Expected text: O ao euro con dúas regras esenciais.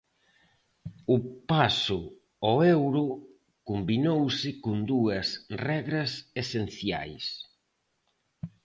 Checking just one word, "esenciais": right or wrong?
right